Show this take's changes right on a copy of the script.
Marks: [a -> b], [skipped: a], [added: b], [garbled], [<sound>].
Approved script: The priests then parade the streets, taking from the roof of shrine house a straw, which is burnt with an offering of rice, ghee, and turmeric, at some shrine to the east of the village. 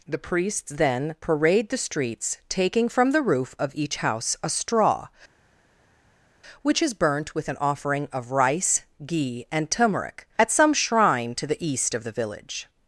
The priests then parade the streets, taking from the roof of [shrine -> each] house a straw, which is burnt with an offering of rice, ghee, and turmeric, at some shrine to the east of the village.